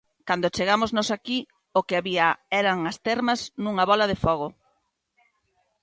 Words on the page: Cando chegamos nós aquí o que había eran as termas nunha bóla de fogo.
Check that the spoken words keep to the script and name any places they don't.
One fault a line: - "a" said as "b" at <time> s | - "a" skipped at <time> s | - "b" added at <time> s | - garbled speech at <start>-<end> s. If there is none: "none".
none